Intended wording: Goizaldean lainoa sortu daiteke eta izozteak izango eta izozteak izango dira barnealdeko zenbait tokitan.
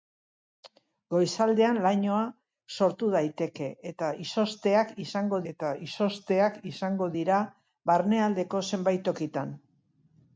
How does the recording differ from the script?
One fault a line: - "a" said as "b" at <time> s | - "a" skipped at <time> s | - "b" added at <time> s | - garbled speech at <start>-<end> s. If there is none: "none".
none